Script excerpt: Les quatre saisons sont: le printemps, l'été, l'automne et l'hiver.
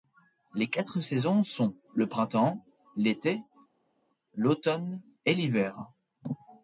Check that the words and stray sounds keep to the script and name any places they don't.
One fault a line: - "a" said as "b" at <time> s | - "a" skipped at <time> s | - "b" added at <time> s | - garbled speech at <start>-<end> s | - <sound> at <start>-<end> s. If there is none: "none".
none